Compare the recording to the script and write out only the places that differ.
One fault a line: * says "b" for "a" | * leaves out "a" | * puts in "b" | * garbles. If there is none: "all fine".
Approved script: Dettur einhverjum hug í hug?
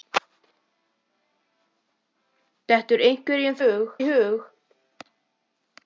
all fine